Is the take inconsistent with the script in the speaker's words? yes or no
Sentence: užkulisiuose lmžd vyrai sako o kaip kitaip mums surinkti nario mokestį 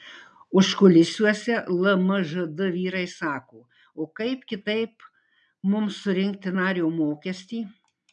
no